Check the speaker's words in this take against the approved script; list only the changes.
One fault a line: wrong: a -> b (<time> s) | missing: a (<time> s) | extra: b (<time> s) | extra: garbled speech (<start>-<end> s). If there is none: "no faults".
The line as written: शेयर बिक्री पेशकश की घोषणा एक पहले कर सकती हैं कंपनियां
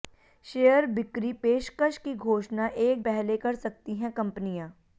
no faults